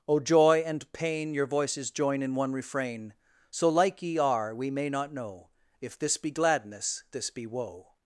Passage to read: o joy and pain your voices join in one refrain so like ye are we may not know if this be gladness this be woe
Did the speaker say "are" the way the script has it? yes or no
yes